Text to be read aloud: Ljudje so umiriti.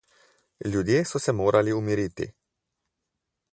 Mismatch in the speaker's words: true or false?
true